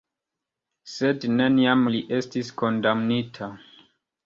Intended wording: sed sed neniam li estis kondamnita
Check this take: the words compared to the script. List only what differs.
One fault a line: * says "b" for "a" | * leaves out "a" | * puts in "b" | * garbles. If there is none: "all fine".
* leaves out "sed"